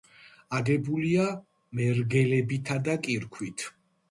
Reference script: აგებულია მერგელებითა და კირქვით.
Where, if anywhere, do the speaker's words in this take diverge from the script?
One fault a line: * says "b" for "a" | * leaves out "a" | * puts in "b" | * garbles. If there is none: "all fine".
all fine